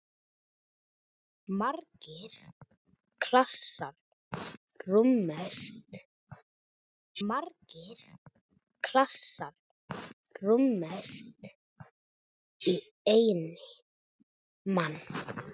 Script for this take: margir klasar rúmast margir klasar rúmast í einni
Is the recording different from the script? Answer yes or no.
no